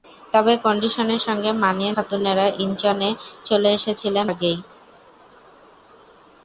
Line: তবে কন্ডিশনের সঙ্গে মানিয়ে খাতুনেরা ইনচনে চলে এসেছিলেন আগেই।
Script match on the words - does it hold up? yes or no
yes